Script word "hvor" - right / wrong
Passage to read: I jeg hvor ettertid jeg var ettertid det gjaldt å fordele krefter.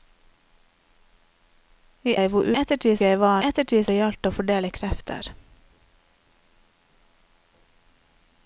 right